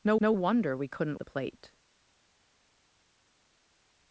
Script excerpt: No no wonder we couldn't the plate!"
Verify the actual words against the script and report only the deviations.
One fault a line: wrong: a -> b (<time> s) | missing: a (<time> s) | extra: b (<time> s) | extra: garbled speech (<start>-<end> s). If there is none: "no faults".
no faults